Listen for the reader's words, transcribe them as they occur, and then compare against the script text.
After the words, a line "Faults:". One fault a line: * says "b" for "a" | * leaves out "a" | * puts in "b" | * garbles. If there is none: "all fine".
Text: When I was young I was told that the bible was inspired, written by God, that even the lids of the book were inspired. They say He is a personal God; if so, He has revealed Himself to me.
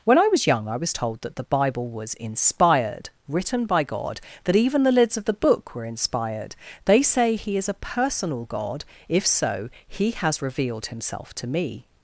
When I was young I was told that the bible was inspired, written by God, that even the lids of the book were inspired. They say He is a personal God; if so, He has revealed Himself to me.
Faults:
all fine